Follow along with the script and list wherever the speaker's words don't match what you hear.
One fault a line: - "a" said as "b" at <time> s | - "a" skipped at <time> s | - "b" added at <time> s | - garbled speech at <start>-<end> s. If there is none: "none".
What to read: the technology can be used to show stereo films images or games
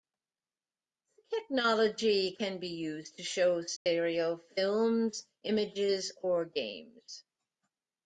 none